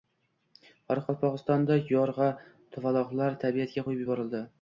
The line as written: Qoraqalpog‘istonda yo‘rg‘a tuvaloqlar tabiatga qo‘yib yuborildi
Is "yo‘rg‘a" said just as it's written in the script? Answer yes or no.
yes